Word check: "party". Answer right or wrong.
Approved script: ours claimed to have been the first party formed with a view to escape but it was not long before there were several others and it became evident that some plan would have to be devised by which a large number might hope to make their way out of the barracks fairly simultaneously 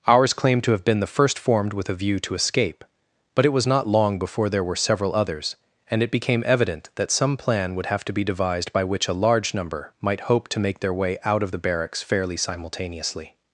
wrong